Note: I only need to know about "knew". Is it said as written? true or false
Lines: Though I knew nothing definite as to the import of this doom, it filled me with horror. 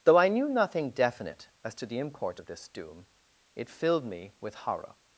true